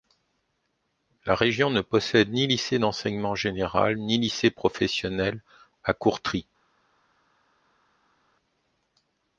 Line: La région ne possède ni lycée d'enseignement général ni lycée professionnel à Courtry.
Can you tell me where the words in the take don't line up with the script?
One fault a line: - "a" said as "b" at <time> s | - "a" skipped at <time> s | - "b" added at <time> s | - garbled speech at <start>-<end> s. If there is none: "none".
none